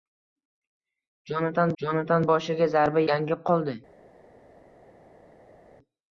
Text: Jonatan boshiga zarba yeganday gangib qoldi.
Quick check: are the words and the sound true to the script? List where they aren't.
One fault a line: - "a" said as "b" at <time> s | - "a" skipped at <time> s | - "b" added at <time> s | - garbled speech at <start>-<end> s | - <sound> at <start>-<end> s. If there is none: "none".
- "jonatan" added at 1.8 s
- "yeganday" skipped at 3.0 s